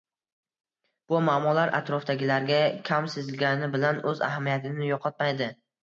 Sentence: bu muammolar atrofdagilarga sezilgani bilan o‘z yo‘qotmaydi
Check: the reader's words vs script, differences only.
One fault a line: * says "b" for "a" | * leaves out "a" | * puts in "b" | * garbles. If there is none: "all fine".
* puts in "kam"
* puts in "ahamiyatini"